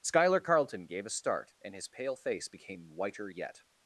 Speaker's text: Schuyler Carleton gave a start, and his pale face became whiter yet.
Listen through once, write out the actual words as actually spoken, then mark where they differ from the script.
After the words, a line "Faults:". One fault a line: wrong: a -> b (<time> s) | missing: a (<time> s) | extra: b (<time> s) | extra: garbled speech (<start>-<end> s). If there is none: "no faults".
Schuyler Carleton gave a start, and his pale face became whiter yet.
Faults:
no faults